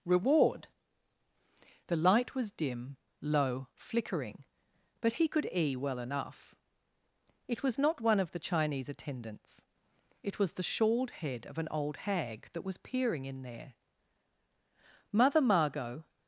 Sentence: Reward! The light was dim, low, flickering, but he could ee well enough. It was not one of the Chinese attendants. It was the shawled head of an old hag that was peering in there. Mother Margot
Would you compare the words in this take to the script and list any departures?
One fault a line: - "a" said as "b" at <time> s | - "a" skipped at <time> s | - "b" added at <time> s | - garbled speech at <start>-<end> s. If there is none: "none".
none